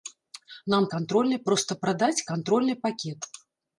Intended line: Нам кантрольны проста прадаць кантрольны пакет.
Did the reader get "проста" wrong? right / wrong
right